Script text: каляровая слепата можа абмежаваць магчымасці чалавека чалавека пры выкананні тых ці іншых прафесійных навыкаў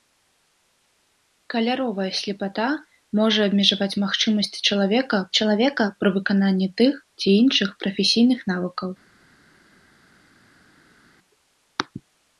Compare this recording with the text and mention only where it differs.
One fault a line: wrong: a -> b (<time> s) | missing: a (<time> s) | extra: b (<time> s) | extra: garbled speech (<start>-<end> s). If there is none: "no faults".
no faults